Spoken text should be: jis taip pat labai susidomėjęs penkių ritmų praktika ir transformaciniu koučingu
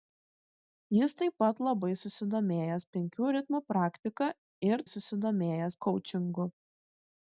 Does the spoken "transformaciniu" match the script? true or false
false